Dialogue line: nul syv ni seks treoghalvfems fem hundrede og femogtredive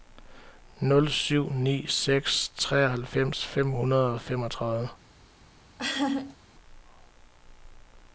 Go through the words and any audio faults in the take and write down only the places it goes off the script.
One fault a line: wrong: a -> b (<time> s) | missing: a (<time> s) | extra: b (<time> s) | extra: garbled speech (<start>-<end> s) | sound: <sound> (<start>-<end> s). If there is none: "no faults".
sound: laugh (5.8-6.4 s)